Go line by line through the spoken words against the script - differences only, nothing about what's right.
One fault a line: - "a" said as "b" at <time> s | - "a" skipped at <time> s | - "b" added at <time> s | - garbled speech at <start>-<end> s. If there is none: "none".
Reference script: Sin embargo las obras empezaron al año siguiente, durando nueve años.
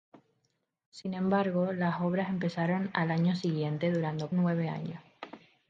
none